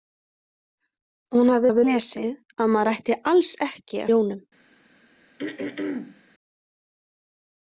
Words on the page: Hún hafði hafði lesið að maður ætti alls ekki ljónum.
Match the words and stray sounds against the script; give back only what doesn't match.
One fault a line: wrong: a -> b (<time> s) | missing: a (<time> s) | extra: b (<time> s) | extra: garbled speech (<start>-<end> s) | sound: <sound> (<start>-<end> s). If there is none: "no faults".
sound: throat clearing (5.4-6.2 s)